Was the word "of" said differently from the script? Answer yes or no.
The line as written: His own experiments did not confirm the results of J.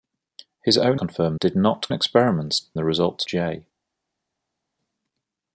yes